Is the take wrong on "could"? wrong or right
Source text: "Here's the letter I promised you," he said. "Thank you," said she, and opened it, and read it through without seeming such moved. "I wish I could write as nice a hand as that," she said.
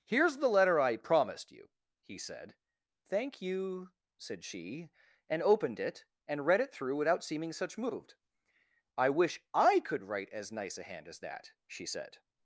right